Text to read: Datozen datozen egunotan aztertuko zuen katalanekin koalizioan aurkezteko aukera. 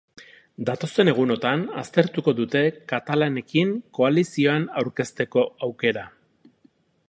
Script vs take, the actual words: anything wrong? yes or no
yes